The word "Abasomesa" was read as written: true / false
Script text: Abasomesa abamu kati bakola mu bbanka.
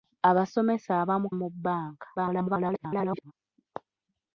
true